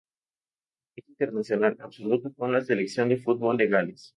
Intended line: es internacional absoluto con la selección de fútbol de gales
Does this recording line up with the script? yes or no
yes